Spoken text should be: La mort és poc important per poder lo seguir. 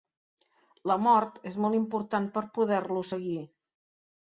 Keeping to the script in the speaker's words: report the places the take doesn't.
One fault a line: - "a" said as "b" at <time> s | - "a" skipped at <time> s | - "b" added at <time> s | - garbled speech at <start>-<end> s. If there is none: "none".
- "poc" said as "molt" at 1.7 s